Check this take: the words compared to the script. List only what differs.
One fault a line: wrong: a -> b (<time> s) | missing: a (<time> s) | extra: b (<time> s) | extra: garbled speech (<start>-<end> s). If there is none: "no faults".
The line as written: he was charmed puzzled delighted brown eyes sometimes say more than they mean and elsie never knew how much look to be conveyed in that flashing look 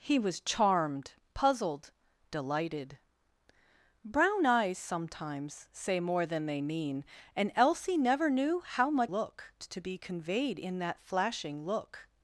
no faults